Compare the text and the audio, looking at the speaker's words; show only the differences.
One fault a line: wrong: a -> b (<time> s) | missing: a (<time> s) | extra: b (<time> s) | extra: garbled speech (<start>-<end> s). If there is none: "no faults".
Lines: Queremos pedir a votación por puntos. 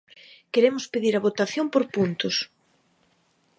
no faults